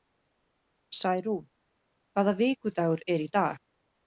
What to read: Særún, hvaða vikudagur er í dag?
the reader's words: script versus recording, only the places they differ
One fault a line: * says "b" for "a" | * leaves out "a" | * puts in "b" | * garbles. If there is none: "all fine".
all fine